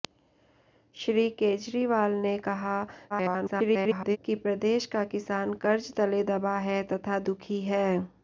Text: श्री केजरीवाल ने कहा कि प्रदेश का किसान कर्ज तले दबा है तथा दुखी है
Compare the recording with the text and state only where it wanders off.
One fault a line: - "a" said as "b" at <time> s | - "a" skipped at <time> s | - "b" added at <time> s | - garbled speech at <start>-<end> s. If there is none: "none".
- garbled speech at 3.1-4.2 s